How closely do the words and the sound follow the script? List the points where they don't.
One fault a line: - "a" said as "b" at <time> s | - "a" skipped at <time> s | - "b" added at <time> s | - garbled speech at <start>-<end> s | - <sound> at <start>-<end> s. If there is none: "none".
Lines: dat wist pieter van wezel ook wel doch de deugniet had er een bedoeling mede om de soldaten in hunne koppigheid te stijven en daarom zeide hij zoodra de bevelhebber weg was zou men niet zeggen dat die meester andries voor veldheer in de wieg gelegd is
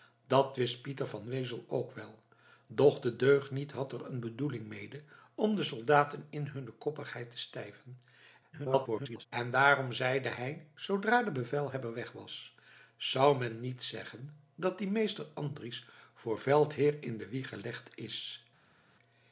- garbled speech at 8.5-9.3 s